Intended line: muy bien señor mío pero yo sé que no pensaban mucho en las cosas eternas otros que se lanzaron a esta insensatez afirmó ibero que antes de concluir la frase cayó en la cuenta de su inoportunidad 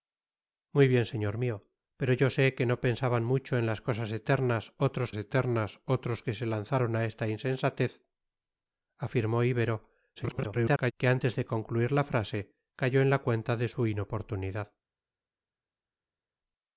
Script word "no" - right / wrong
right